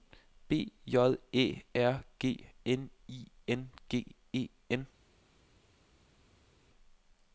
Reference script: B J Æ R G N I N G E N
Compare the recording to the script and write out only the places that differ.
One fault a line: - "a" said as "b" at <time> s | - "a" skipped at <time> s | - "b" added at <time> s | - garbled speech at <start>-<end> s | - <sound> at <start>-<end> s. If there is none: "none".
none